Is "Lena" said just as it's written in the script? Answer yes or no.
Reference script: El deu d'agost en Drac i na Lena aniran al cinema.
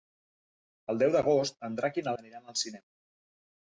no